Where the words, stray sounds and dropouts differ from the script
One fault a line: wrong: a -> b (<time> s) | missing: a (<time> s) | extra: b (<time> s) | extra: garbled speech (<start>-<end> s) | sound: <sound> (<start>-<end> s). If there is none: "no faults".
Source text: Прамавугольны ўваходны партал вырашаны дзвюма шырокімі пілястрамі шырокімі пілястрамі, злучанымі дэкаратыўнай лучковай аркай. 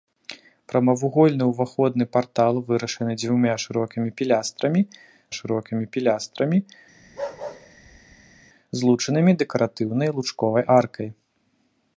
sound: bark (7.0-8.4 s)